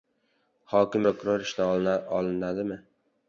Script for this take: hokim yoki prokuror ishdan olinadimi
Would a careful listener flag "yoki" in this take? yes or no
yes